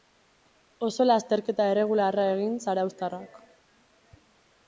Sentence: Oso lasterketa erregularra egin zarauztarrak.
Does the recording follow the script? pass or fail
pass